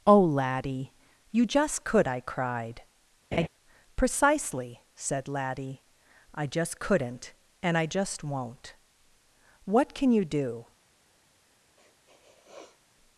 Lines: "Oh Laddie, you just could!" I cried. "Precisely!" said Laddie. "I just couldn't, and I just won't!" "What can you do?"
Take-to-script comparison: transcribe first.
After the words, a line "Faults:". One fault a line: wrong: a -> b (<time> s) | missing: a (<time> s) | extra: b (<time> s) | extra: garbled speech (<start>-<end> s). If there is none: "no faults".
"Oh Laddie, you just could!" I cried. "Precisely!" said Laddie. "I just couldn't, and I just won't!" "What can you do?"
Faults:
no faults